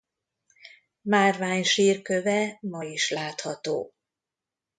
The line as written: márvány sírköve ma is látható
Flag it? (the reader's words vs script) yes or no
no